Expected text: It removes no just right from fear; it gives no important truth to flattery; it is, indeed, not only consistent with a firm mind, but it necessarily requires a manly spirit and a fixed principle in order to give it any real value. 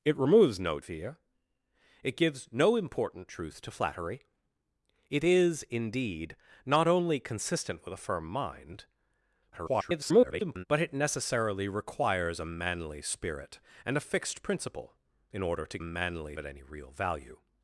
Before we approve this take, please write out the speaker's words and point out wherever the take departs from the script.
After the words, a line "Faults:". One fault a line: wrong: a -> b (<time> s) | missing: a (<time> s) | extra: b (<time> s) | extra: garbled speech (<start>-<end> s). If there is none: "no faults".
It removes no fear; it gives no important truth to flattery; it is, indeed, not only consistent with a firm mind, [garbled] but it necessarily requires a manly spirit and a fixed principle in order to manly it any real value.
Faults:
missing: just right from (0.8 s)
extra: garbled speech (9.5-10.6 s)
wrong: give -> manly (15.8 s)